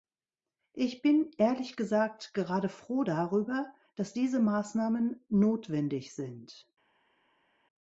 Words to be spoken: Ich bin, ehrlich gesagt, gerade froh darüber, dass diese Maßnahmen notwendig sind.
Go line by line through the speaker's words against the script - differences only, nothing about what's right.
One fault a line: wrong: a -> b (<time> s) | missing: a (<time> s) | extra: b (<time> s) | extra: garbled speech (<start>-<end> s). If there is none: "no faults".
no faults